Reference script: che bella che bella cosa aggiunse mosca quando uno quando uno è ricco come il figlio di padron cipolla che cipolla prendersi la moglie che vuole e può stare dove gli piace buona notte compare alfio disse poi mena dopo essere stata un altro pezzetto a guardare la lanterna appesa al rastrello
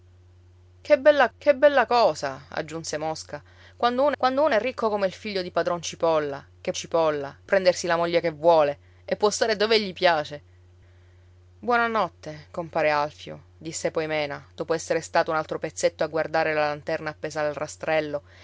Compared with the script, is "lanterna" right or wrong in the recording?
right